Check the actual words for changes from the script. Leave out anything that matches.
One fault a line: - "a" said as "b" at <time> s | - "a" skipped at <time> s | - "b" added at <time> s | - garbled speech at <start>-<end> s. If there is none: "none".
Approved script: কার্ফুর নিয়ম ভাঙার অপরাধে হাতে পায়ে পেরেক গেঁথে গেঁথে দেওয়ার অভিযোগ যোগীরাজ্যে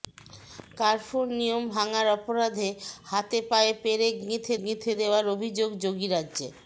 none